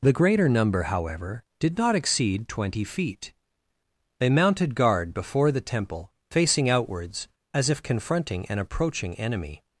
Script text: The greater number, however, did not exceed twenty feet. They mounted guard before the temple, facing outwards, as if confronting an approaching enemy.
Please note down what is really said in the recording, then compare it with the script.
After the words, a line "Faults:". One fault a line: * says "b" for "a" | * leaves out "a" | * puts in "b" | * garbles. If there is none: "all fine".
The greater number, however, did not exceed twenty feet. They mounted guard before the temple, facing outwards, as if confronting an approaching enemy.
Faults:
all fine